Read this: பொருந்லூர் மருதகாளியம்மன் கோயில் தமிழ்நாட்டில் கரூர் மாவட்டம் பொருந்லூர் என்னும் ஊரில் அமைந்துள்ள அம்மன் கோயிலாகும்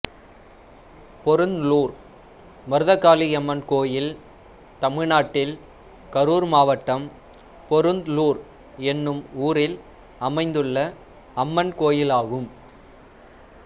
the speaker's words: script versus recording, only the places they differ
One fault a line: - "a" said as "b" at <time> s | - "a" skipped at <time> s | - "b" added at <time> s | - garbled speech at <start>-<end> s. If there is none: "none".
none